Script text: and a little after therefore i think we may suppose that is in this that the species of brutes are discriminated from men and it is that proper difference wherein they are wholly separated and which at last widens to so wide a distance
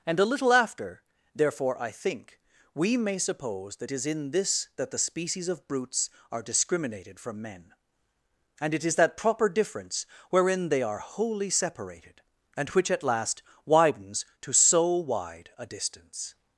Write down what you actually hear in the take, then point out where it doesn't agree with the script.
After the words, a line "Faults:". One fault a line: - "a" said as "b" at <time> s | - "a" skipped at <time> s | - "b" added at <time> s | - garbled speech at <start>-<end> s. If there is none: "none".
and a little after therefore i think we may suppose that is in this that the species of brutes are discriminated from men and it is that proper difference wherein they are wholly separated and which at last widens to so wide a distance
Faults:
none